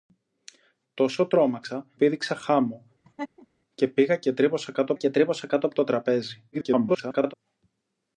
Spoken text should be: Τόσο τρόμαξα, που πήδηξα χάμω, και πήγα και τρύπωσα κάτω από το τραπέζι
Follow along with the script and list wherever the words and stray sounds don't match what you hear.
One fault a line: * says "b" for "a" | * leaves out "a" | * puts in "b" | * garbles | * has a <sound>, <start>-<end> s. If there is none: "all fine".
* leaves out "που"
* has a laugh, 3.0-3.5 s
* puts in "και τρύπωσα κάτω"
* garbles